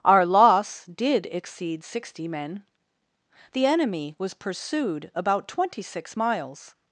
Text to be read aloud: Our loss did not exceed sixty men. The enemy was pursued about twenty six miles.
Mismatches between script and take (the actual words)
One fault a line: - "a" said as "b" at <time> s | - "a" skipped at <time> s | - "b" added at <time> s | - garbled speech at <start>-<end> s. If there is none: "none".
- "not" skipped at 1.3 s